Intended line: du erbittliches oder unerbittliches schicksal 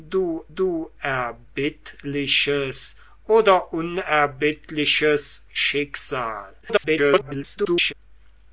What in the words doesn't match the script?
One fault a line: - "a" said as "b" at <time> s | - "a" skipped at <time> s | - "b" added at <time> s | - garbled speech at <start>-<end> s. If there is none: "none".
- "du" added at 0.5 s
- garbled speech at 6.6-7.9 s